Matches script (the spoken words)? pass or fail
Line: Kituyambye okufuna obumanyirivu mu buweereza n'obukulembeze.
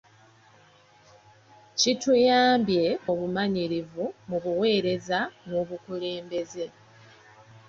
fail